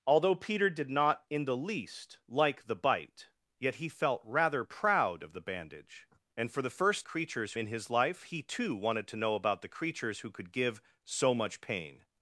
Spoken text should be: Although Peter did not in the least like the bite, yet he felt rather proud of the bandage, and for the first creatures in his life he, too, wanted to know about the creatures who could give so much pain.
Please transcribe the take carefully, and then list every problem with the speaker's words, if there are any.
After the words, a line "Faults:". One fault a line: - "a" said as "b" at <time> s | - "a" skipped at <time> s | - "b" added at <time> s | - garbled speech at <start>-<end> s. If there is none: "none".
Although Peter did not in the least like the bite, yet he felt rather proud of the bandage, and for the first creatures in his life he, too, wanted to know about the creatures who could give so much pain.
Faults:
none